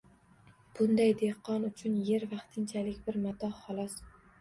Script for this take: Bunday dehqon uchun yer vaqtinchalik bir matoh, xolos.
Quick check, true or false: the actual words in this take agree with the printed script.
true